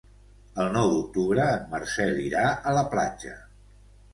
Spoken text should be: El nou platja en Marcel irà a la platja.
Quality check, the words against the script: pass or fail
fail